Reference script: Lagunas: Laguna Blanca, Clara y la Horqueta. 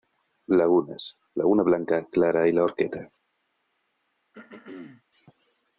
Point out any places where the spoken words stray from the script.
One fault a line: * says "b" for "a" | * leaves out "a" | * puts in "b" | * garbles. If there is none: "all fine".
all fine